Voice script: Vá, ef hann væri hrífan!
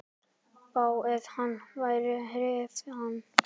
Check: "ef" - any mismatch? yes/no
no